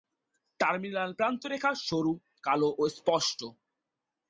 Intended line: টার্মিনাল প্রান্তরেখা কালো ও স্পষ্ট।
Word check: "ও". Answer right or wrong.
right